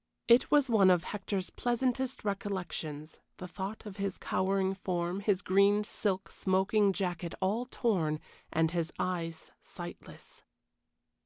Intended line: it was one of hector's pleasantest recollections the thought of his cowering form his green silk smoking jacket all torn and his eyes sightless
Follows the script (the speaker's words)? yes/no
yes